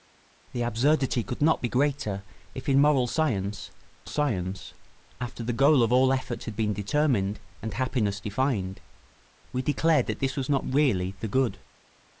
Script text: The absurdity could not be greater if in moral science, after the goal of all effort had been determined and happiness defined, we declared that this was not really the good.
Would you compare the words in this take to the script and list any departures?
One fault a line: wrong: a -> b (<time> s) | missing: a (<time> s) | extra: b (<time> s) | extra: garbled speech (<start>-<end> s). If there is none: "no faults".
extra: science (4.0 s)